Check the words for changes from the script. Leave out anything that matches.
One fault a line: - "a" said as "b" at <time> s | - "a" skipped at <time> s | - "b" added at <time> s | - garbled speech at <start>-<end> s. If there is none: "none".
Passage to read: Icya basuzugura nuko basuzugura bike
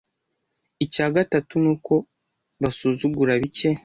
- "basuzugura" said as "gatatu" at 1.1 s